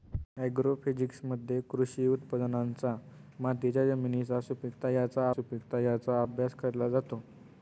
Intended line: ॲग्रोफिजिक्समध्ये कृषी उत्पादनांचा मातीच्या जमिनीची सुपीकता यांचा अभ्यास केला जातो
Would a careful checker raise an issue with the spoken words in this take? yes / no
yes